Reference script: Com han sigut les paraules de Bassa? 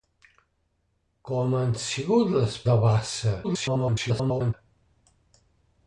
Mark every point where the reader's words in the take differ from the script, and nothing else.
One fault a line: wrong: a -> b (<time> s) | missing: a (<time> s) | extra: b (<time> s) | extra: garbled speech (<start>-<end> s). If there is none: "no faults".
missing: paraules (2.6 s)
extra: garbled speech (3.4-4.5 s)